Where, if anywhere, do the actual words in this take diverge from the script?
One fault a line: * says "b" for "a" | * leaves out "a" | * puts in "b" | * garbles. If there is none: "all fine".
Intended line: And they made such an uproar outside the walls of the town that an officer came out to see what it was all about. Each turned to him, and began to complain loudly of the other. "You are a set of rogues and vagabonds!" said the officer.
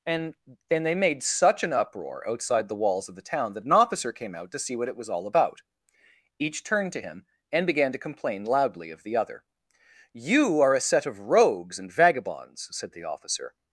* puts in "then"